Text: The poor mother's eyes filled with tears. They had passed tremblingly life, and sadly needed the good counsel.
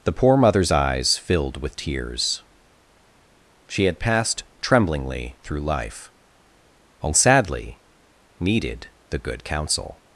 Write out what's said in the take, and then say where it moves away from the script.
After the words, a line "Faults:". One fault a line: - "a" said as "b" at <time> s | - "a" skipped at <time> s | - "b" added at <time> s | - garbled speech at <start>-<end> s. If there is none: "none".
The poor mother's eyes filled with tears. She had passed tremblingly through life, and sadly needed the good counsel.
Faults:
- "They" said as "She" at 3.7 s
- "through" added at 5.4 s